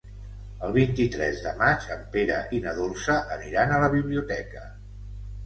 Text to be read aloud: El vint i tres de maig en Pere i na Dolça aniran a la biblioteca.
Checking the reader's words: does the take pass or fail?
pass